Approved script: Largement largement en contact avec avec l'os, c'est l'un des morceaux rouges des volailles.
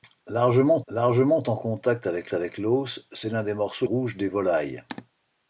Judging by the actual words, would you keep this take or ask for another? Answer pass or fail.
pass